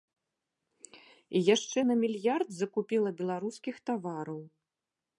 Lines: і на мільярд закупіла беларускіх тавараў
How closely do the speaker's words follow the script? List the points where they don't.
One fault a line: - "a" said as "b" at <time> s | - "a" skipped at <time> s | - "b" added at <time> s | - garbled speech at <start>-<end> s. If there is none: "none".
- "яшчэ" added at 1.6 s